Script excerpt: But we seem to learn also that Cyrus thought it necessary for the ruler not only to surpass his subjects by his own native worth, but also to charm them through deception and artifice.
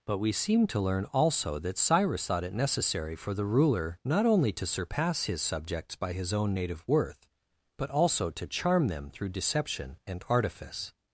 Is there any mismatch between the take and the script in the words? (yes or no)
no